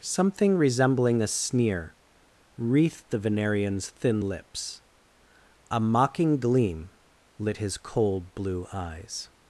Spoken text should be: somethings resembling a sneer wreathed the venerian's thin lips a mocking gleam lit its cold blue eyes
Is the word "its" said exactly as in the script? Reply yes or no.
no